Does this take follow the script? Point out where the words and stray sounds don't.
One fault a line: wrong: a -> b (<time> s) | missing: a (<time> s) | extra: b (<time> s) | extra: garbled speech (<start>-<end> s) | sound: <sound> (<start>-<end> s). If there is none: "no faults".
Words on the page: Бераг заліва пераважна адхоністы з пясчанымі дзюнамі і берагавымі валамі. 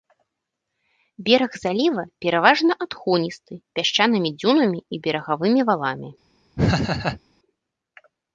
missing: з (3.5 s)
sound: laugh (6.6-7.2 s)